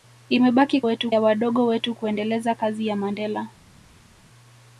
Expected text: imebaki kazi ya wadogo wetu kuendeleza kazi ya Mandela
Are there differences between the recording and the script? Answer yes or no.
yes